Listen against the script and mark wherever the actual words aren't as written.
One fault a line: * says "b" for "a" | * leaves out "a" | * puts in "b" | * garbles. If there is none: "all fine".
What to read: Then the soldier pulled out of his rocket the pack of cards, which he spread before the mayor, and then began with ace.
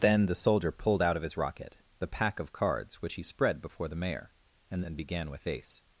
all fine